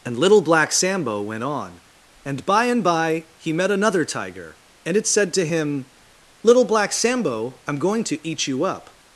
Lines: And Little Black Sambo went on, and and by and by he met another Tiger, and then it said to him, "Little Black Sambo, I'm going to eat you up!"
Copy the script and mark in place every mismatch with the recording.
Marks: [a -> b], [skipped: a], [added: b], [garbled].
And Little Black Sambo went on, and [skipped: and] by and by he met another Tiger, and [skipped: then] it said to him, "Little Black Sambo, I'm going to eat you up!"